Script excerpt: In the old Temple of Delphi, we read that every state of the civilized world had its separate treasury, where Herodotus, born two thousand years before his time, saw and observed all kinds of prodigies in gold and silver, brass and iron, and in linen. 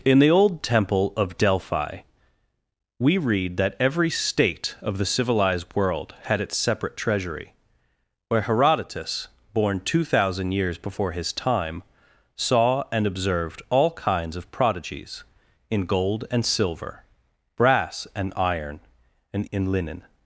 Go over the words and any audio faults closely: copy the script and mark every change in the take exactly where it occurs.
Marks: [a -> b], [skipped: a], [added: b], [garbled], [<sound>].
In the old Temple of Delphi, we read that every state of the civilized world had its separate treasury, where Herodotus, born two thousand years before his time, saw and observed all kinds of prodigies in gold and silver, brass and iron, and in linen.